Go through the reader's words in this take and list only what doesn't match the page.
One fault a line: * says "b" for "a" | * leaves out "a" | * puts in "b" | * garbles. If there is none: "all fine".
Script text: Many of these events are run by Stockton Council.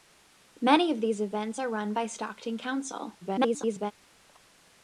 * garbles